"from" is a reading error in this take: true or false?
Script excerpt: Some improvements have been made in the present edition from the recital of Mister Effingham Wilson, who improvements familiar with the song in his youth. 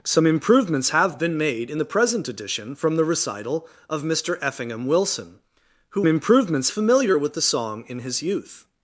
false